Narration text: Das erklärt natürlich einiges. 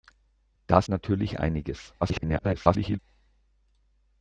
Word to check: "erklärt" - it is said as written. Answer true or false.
false